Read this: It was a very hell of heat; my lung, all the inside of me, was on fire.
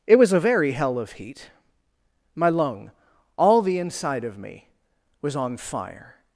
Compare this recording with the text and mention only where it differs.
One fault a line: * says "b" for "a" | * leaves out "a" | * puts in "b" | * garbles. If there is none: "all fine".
all fine